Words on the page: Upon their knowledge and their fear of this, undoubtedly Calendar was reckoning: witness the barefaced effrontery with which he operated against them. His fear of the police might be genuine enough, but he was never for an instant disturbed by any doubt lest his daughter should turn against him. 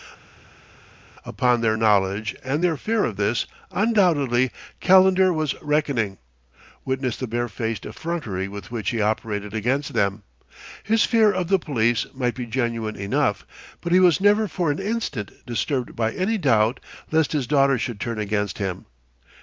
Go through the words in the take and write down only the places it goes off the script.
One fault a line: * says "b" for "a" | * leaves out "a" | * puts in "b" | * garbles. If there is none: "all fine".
all fine